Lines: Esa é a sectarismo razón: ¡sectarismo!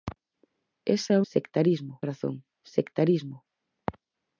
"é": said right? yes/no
yes